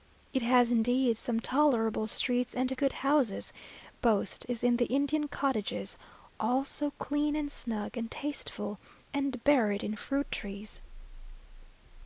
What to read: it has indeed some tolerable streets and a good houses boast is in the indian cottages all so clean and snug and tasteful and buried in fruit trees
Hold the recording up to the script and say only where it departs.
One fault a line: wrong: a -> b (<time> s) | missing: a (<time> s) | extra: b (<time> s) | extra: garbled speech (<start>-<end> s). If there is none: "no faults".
no faults